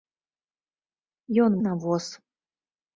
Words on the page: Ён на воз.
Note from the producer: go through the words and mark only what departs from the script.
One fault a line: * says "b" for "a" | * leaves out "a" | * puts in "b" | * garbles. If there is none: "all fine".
all fine